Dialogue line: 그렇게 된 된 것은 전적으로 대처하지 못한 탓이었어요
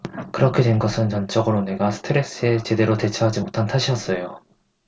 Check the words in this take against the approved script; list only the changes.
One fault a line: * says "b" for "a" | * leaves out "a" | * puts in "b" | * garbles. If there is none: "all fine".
* leaves out "된"
* puts in "내가 스트레스에 제대로"